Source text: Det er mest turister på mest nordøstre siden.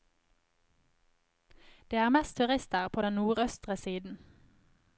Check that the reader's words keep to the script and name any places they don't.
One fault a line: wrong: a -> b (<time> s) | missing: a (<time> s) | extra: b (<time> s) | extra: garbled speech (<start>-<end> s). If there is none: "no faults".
wrong: mest -> den (3.0 s)